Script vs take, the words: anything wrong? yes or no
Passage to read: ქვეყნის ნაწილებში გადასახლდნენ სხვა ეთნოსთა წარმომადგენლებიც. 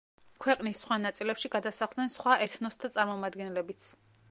yes